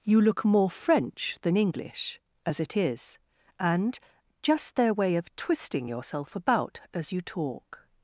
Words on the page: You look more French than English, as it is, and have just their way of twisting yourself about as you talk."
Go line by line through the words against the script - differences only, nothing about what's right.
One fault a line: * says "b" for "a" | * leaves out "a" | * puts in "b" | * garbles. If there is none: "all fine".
* leaves out "have"